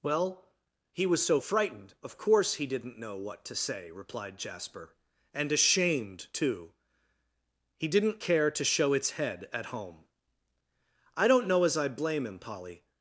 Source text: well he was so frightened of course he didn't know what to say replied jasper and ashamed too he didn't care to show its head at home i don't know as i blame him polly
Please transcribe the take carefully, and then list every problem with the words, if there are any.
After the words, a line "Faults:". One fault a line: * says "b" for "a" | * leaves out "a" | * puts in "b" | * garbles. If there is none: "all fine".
well he was so frightened of course he didn't know what to say replied jasper and ashamed too he didn't care to show its head at home i don't know as i blame him polly
Faults:
all fine